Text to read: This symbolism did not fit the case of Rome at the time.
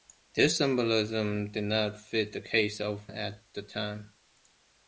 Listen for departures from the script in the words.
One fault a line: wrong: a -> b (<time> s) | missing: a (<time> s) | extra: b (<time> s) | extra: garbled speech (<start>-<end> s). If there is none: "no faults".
missing: Rome (3.1 s)